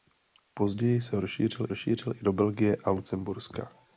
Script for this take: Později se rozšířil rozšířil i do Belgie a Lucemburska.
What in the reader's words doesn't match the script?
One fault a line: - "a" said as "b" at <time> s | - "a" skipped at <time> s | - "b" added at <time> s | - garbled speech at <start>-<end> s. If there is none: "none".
none